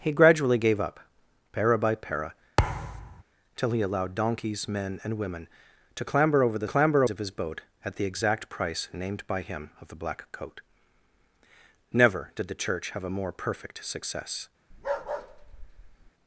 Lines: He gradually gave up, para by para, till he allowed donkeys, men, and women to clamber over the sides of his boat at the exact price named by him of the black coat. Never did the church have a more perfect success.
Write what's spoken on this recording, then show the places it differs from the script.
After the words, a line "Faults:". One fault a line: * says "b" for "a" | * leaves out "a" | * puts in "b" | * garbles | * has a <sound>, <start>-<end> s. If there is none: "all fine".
He gradually gave up, para by para, till he allowed donkeys, men, and women to clamber over the clamber of his boat at the exact price named by him of the black coat. Never did the church have a more perfect success.
Faults:
* has a thud, 2.6-3.2 s
* says "clamber" for "sides"
* has a bark, 14.7-16.1 s